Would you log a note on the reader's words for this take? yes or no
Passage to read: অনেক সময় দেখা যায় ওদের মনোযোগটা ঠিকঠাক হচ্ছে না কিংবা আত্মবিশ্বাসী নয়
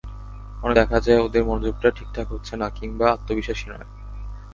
yes